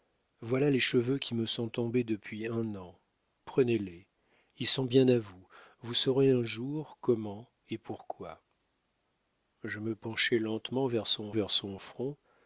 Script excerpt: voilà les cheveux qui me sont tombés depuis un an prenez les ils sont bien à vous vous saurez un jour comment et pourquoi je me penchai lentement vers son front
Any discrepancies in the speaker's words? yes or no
yes